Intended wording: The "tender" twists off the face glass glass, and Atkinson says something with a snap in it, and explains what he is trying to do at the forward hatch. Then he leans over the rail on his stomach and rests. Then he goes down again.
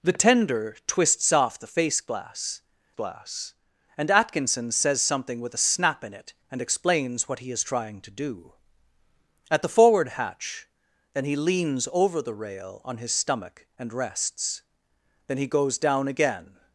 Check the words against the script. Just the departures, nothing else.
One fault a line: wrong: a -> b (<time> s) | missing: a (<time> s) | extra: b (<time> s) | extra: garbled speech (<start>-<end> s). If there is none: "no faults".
no faults